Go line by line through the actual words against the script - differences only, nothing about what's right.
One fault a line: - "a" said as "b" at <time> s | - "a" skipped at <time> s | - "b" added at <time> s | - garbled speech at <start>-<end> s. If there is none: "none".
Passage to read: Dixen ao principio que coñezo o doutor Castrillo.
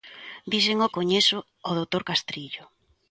- "principio que" skipped at 0.9 s